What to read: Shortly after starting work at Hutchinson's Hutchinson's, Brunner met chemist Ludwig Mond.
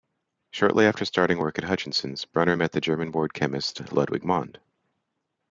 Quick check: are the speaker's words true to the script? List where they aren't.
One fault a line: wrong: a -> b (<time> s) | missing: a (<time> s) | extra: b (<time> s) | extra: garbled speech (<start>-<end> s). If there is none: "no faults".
missing: Hutchinson's (2.2 s)
extra: the German born (2.7 s)